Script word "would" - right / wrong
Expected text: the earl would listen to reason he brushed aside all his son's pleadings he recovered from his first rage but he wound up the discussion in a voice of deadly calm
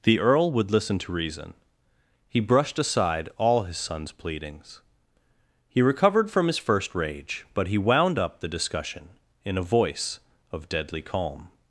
right